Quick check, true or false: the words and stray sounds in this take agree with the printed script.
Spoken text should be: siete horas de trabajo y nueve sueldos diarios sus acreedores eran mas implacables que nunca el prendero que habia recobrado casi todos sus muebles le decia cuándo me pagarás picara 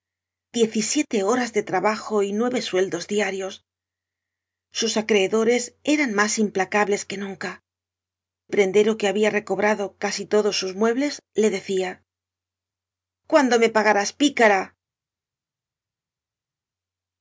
false